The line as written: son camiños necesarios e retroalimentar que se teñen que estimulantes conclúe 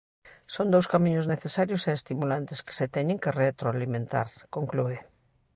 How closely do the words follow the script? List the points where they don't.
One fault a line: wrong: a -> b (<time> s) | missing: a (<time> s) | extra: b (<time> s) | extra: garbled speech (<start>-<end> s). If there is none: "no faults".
extra: dous (0.7 s)
wrong: retroalimentar -> estimulantes (2.0 s)
wrong: estimulantes -> retroalimentar (3.4 s)